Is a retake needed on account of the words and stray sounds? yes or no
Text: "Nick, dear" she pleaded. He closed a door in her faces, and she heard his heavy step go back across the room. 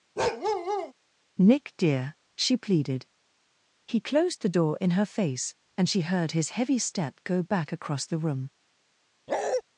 yes